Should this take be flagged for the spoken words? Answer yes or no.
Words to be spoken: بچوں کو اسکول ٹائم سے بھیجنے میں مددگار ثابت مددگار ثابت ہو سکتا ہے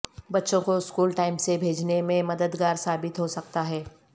yes